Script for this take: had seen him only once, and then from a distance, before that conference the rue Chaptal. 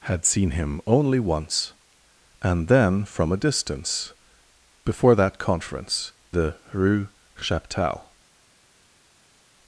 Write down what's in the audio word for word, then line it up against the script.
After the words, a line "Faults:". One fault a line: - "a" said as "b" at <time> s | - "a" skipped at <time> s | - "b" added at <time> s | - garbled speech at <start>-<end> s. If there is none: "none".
had seen him only once, and then from a distance, before that conference the rue Chaptal.
Faults:
none